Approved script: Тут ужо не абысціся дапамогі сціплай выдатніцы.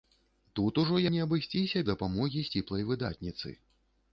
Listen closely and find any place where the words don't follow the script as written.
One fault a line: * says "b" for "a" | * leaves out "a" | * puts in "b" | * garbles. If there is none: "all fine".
all fine